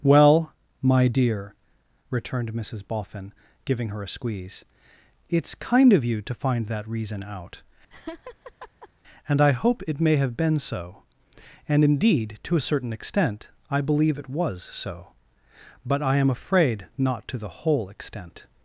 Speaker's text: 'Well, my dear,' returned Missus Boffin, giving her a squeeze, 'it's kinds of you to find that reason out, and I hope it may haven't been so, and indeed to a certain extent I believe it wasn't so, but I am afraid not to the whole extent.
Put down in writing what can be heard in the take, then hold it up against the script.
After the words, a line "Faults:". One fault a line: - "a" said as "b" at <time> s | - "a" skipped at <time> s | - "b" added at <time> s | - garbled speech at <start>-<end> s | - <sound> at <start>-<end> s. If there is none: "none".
'Well, my dear,' returned Missus Boffin, giving her a squeeze, 'it's kind of you to find that reason out, and I hope it may have been so, and indeed to a certain extent I believe it was so, but I am afraid not to the whole extent.
Faults:
- "kinds" said as "kind" at 5.5 s
- laugh at 7.9-8.9 s
- "haven't" said as "have" at 10.2 s
- "wasn't" said as "was" at 14.3 s